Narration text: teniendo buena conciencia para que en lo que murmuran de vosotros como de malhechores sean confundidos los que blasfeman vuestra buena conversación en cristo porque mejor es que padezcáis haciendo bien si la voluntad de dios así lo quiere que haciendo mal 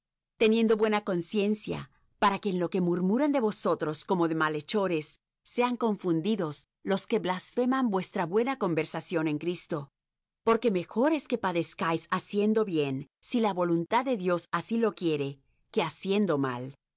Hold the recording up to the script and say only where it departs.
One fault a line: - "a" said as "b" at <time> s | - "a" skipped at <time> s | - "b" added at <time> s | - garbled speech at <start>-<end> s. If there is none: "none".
none